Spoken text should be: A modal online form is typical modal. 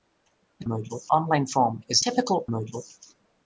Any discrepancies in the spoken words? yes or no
no